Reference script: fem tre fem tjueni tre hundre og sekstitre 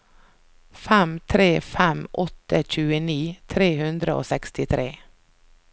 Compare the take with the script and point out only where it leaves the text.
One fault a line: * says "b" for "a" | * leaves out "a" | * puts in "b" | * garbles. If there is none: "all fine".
* puts in "åtte"